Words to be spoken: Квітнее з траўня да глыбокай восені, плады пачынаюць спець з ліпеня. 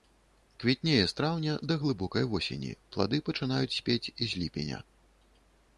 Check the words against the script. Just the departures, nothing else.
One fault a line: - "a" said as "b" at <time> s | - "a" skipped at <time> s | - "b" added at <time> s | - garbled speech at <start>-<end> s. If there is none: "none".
none